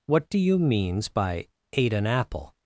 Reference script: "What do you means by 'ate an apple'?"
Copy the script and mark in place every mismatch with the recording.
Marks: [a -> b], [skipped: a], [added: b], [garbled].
"What do you means by 'ate an apple'?"